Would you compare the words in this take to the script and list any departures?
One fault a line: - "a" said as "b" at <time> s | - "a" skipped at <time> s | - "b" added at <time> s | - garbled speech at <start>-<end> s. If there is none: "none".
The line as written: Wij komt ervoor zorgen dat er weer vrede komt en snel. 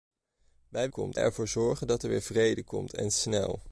none